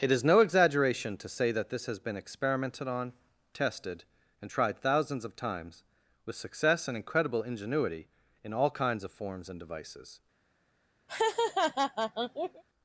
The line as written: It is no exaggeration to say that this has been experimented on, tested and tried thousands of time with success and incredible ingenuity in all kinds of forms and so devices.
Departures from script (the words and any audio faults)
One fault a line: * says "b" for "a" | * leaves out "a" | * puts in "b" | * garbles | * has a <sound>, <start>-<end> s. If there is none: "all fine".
* says "times" for "time"
* leaves out "so"
* has a laugh, 11.1-12.6 s